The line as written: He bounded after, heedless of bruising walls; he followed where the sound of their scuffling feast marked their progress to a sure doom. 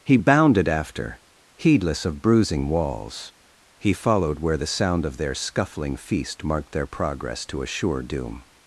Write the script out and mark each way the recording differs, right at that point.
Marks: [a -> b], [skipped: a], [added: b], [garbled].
He bounded after, heedless of bruising walls; he followed where the sound of their scuffling feast marked their progress to a sure doom.